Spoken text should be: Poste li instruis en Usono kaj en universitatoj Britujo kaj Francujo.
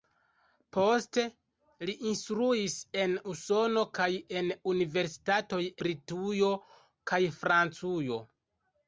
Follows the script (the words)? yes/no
yes